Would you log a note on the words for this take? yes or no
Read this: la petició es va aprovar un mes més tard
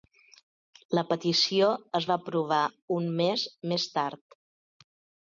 no